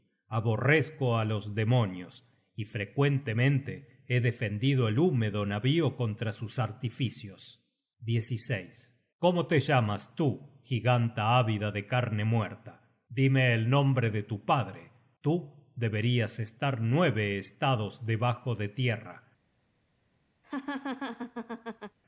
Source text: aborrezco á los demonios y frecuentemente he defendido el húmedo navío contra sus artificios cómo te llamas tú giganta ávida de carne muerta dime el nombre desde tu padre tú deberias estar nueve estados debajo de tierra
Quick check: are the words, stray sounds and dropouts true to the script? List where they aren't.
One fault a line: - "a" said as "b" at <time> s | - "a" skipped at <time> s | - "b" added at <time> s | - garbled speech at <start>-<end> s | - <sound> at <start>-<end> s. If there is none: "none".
- "desde" said as "de" at 14.1 s
- laugh at 20.4-22.0 s